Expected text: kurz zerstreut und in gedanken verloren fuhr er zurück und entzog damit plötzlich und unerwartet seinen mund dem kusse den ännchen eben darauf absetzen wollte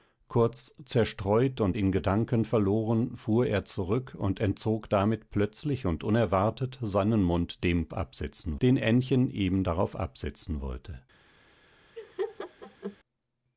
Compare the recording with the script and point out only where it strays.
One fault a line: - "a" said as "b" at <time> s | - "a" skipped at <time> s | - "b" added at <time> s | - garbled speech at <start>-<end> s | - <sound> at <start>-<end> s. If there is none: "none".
- "kusse" said as "absetzen" at 7.9 s
- laugh at 12.0-13.0 s